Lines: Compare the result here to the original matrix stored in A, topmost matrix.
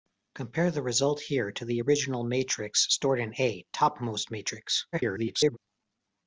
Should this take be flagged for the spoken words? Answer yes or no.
yes